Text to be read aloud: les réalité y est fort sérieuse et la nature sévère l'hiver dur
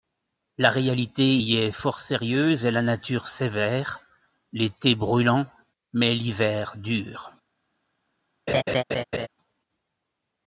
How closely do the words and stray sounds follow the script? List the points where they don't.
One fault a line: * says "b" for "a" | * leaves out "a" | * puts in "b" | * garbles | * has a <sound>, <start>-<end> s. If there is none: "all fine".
* says "la" for "les"
* puts in "l'été brûlant mais"
* has a laugh, 8.5-9.3 s